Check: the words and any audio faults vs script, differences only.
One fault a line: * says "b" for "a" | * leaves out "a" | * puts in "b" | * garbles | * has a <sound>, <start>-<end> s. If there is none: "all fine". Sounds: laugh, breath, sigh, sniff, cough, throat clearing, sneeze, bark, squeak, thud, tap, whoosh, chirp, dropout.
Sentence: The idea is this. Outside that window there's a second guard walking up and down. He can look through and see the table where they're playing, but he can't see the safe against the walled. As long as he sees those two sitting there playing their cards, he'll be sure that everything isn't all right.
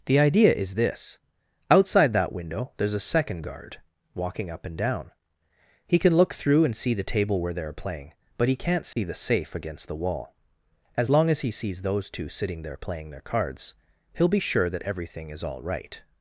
* has a dropout, 8.9-9.0 s
* says "wall" for "walled"
* says "is" for "isn't"